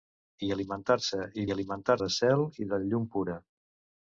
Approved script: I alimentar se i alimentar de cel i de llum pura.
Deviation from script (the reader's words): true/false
false